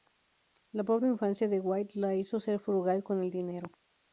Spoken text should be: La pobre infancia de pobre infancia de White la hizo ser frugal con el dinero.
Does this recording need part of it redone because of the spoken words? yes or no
yes